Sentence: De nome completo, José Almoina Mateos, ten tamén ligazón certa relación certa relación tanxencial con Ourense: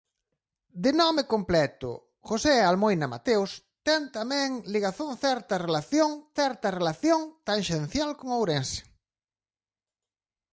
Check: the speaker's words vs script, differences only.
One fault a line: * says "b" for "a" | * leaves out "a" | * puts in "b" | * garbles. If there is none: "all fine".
all fine